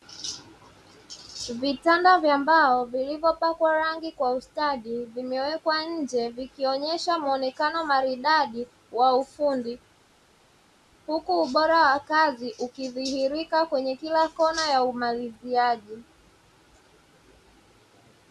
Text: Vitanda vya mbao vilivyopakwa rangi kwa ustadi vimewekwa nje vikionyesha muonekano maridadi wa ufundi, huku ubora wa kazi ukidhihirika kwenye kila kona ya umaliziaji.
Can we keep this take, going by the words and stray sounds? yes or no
yes